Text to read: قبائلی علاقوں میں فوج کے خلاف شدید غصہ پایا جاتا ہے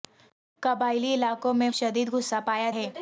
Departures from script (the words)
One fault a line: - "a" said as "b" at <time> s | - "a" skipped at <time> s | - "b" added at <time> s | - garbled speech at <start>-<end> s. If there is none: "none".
- "فوج کے خلاف" skipped at 1.7 s
- "جاتا" skipped at 2.7 s